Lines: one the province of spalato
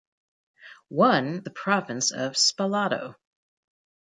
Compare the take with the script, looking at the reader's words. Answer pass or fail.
pass